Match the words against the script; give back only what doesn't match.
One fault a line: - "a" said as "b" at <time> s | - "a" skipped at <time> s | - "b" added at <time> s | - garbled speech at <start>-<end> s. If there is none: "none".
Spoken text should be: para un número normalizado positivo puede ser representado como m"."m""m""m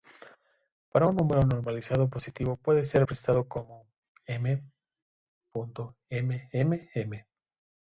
none